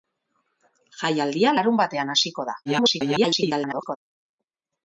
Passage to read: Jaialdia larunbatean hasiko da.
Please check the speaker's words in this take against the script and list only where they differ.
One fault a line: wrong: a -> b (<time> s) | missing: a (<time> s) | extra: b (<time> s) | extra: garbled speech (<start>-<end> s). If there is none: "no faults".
extra: garbled speech (2.7-4.0 s)